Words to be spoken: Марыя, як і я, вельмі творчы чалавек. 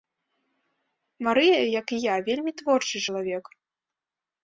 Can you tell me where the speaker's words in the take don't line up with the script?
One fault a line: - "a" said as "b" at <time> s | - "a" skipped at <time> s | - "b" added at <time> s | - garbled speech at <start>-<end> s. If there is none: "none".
none